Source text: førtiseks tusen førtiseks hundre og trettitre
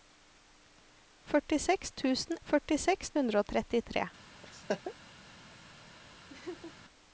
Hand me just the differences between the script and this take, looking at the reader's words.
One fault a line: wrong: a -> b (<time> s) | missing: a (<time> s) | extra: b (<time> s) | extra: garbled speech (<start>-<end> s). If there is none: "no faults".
no faults